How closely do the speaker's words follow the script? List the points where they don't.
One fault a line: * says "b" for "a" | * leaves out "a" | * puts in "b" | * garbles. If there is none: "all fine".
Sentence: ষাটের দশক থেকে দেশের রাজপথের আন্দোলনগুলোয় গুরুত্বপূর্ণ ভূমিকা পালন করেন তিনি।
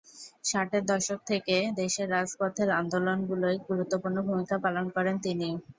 all fine